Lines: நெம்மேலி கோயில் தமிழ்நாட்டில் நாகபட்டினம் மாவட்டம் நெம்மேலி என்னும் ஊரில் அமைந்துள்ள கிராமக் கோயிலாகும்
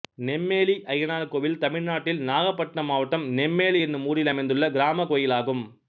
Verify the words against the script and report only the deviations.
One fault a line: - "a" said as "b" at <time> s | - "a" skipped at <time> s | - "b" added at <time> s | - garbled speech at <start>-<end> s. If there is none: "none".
- "அய்யனார்" added at 0.9 s